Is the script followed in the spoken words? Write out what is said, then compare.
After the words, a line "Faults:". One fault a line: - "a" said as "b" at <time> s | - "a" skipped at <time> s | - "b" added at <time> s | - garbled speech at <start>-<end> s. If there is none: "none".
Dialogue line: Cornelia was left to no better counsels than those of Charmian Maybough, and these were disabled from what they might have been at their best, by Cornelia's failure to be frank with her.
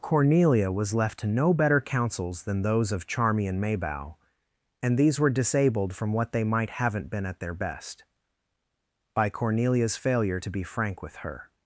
Cornelia was left to no better counsels than those of Charmian Maybough, and these were disabled from what they might haven't been at their best, by Cornelia's failure to be frank with her.
Faults:
- "have" said as "haven't" at 6.7 s